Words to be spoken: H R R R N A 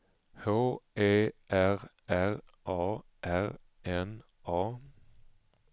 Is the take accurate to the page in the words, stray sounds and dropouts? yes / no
no